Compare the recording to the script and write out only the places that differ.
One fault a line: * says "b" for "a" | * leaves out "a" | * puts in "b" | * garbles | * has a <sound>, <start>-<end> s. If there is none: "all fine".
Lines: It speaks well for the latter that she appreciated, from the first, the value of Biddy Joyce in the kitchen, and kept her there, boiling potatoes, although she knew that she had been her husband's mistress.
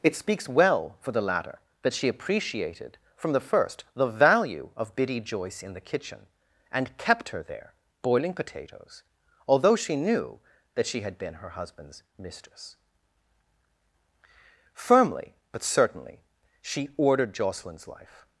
* puts in "Firmly but certainly she ordered Jocelyn's life"